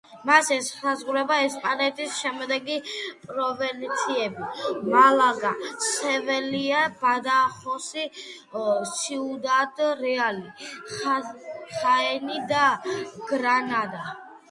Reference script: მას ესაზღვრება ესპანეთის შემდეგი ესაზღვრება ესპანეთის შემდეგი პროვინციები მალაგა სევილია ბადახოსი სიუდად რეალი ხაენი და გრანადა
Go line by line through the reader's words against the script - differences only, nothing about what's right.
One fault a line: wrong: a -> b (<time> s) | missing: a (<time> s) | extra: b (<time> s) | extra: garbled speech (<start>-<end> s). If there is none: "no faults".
missing: ესაზღვრება ესპანეთის შემდეგი (2.8 s)